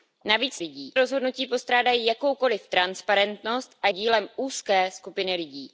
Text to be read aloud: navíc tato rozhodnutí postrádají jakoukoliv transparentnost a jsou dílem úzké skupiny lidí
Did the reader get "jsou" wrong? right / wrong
wrong